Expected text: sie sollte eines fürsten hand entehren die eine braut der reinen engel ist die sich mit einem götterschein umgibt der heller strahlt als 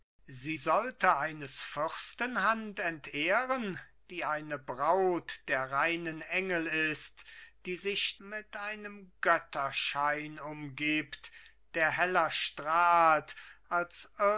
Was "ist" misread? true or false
false